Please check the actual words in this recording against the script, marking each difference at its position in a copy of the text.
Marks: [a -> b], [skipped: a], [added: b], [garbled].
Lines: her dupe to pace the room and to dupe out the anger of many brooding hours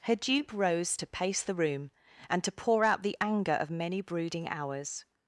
her dupe [added: rose] to pace the room and to [dupe -> pour] out the anger of many brooding hours